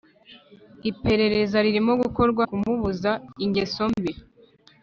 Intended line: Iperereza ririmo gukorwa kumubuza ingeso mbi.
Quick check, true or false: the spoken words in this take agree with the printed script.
true